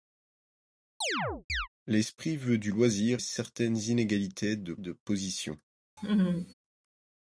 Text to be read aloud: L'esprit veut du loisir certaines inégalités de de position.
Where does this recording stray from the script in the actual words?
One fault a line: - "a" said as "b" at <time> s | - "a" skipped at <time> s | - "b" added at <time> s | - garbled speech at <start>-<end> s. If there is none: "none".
none